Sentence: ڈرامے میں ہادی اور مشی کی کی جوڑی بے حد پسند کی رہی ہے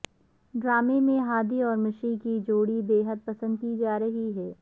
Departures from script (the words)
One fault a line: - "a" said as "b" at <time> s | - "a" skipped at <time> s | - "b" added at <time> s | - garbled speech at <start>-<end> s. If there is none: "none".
- "کی" skipped at 2.4 s
- "جا" added at 3.8 s